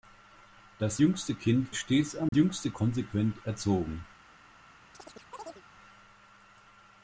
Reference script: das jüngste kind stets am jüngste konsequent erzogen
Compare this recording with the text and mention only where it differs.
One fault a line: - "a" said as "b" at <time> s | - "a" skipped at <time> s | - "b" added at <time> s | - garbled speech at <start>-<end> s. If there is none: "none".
none